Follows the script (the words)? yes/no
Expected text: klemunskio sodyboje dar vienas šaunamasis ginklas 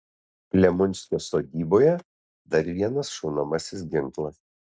yes